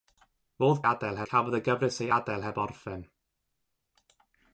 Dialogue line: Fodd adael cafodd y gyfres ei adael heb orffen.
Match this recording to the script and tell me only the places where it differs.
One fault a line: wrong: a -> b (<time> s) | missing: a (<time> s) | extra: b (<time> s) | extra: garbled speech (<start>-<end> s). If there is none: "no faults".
no faults